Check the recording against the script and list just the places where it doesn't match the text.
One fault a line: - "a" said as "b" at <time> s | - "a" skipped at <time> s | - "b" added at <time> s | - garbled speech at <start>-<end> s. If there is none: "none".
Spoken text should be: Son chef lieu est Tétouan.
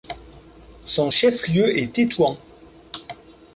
none